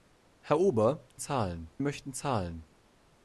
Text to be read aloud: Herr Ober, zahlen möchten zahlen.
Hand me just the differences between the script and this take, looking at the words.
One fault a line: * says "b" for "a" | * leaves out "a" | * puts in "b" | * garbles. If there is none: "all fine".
all fine